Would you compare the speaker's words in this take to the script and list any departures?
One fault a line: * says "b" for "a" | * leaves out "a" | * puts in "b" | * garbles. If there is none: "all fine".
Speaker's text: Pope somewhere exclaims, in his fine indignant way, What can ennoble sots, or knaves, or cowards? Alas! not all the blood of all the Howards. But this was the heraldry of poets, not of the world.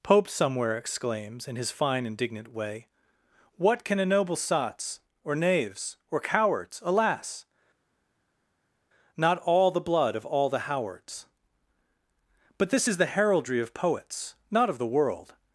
* says "is" for "was"